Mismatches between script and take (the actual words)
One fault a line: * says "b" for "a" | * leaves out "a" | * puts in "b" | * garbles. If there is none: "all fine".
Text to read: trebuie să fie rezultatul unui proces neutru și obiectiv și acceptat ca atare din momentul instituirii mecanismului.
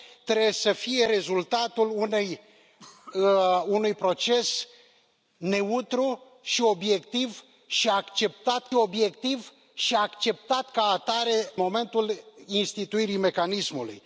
* puts in "obiectiv și acceptat"
* leaves out "din"